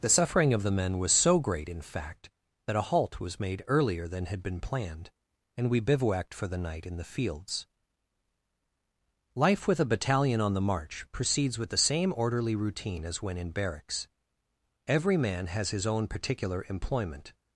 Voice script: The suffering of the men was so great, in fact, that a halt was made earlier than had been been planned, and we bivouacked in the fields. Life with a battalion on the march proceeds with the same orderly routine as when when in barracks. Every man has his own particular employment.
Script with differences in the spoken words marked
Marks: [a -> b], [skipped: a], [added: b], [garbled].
The suffering of the men was so great, in fact, that a halt was made earlier than had been [skipped: been] planned, and we bivouacked [added: for the night] in the fields. Life with a battalion on the march proceeds with the same orderly routine as when [skipped: when] in barracks. Every man has his own particular employment.